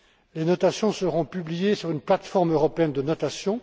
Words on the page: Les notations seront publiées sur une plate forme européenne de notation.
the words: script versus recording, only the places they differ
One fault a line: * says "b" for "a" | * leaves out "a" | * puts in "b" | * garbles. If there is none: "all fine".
all fine